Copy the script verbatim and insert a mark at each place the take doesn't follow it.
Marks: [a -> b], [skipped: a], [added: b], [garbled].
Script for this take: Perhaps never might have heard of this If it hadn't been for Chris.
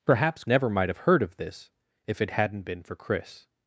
Perhaps never might have heard of this If it hadn't been for Chris.